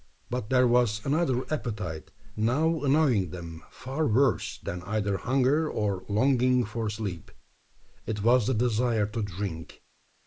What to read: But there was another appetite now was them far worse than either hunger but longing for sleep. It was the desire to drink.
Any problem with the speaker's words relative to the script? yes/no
yes